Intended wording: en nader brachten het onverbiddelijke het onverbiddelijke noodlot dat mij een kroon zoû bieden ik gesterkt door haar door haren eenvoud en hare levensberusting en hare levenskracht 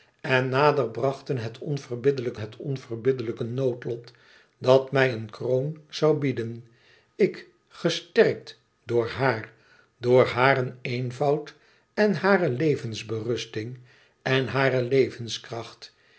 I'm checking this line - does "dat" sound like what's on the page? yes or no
yes